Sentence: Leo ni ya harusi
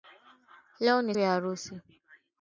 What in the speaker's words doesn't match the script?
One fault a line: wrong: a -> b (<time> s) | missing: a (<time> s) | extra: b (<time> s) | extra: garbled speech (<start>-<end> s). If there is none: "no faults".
no faults